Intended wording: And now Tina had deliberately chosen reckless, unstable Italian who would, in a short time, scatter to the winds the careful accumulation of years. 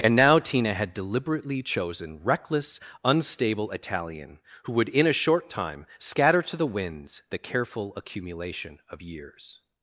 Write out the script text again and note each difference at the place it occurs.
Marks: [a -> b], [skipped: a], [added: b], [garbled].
And now Tina had deliberately chosen reckless, unstable Italian who would, in a short time, scatter to the winds the careful accumulation of years.